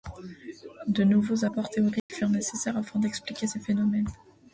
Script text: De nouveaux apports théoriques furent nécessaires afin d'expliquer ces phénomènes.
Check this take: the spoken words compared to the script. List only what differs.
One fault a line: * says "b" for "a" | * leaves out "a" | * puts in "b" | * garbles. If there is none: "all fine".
all fine